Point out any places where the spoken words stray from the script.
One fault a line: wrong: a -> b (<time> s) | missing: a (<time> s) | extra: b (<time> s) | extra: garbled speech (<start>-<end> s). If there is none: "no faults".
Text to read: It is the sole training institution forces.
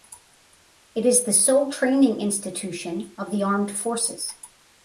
extra: of the armed (3.2 s)